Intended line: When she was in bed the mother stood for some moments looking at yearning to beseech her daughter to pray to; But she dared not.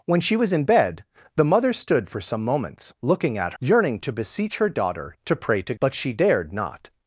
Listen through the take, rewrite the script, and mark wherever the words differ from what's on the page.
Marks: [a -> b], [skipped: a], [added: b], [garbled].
When she was in bed the mother stood for some moments looking at yearning to beseech her daughter to pray to; But she dared not.